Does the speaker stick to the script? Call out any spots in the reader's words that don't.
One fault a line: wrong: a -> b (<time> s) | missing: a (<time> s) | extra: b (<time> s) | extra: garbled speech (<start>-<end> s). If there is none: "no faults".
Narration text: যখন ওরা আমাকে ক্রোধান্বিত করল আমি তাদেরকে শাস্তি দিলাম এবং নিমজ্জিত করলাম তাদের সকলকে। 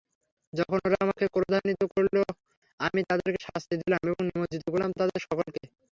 no faults